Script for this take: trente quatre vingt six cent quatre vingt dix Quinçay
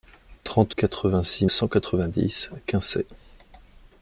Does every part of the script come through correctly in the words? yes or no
yes